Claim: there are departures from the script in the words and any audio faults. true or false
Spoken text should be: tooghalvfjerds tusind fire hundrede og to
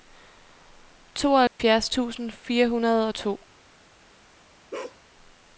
true